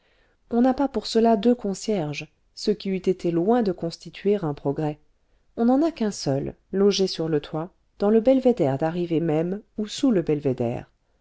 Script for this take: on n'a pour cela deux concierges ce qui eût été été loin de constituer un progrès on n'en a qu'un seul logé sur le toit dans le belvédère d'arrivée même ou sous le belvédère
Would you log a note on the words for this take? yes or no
yes